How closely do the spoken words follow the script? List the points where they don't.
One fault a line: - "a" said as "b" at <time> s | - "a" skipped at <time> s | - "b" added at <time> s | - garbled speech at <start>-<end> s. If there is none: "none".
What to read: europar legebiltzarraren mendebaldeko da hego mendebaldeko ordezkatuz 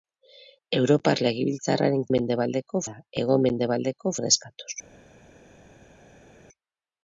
none